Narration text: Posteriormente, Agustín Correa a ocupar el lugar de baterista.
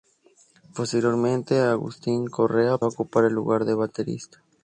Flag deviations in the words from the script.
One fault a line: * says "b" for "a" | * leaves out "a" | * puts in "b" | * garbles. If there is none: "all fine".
all fine